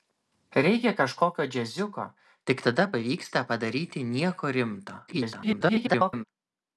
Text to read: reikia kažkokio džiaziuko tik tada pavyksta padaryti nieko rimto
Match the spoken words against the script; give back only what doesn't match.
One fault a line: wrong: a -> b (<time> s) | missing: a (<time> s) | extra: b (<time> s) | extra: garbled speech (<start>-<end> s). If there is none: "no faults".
extra: garbled speech (5.1-6.2 s)